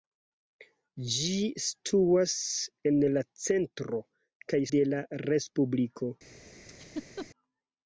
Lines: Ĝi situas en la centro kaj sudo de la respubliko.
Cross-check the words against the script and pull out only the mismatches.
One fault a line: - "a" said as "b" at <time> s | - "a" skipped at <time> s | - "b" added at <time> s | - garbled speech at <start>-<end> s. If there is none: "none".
- "sudo" skipped at 4.6 s